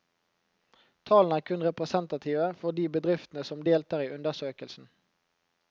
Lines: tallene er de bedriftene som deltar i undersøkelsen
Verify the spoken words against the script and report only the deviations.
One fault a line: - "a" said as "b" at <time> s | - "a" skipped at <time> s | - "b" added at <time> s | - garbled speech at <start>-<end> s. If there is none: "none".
- "kun representative for" added at 1.5 s